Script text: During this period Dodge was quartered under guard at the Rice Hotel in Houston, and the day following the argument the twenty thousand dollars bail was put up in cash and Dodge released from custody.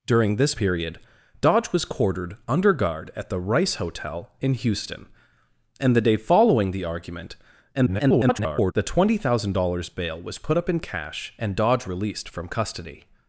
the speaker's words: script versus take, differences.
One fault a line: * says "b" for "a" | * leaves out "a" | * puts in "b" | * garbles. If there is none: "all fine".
* garbles